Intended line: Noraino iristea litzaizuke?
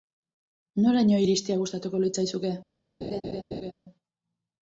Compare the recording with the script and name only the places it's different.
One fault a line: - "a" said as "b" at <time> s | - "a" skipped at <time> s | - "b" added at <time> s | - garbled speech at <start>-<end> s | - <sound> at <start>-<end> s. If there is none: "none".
- "gustatuko" added at 1.6 s
- laugh at 3.0-3.7 s